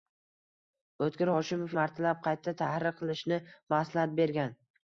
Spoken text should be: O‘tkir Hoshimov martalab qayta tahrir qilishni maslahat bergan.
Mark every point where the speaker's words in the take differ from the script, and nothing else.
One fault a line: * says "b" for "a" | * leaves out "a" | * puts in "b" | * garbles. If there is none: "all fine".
all fine